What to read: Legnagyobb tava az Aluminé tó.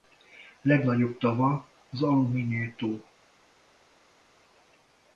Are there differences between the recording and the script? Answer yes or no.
no